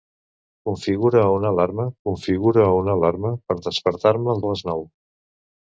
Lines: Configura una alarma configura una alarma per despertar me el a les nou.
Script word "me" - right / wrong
right